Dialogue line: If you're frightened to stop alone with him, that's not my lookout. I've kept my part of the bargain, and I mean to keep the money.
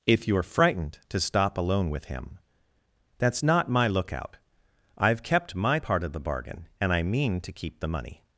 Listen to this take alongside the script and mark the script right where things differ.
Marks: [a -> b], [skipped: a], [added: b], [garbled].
If you're frightened to stop alone with him, that's not my lookout. I've kept my part of the bargain, and I mean to keep the money.